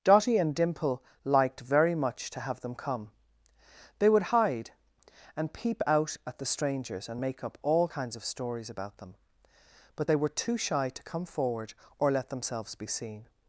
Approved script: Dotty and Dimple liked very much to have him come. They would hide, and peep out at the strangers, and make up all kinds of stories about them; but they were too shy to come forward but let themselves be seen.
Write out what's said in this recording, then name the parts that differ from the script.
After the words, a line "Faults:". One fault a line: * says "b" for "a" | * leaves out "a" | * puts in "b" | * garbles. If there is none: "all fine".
Dotty and Dimple liked very much to have them come. They would hide, and peep out at the strangers, and make up all kinds of stories about them; but they were too shy to come forward or let themselves be seen.
Faults:
* says "them" for "him"
* says "or" for "but"